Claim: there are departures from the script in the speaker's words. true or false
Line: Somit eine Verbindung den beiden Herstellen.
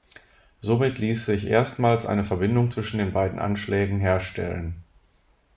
true